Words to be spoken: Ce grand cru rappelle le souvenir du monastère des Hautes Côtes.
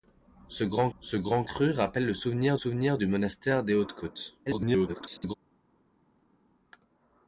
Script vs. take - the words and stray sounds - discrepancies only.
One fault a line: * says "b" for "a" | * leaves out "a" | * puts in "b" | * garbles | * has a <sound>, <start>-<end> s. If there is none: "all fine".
* puts in "ce grand"
* puts in "souvenir"
* garbles